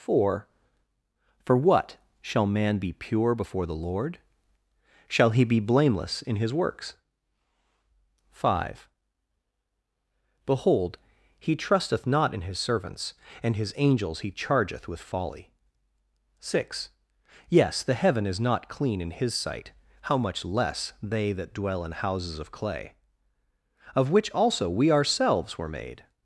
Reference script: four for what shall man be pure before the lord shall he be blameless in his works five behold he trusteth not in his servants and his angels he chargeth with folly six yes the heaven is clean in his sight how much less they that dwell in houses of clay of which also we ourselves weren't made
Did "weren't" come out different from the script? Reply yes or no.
yes